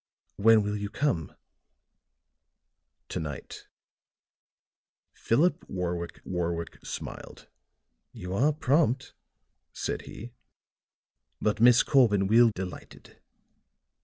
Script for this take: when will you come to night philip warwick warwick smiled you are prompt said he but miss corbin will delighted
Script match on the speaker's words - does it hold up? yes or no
yes